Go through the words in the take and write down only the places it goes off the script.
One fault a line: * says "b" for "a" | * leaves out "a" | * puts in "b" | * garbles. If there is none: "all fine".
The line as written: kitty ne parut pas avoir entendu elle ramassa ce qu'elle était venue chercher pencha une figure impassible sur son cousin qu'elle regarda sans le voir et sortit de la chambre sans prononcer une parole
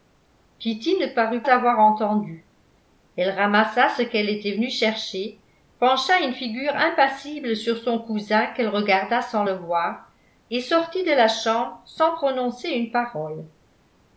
* leaves out "pas"